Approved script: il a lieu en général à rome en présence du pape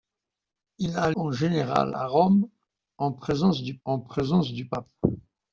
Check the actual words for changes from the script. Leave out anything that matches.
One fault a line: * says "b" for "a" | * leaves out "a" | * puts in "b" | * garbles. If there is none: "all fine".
* leaves out "lieu"
* puts in "en présence du"